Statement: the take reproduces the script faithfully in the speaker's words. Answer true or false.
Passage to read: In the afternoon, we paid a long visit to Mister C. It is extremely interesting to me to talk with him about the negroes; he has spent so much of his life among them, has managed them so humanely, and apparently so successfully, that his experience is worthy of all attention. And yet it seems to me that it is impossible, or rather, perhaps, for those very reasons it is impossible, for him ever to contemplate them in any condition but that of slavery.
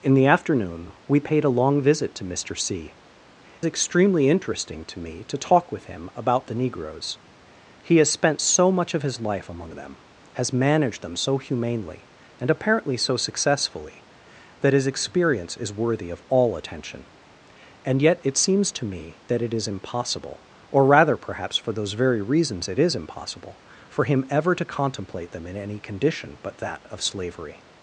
false